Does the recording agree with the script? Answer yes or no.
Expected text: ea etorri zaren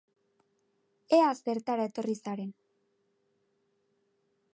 no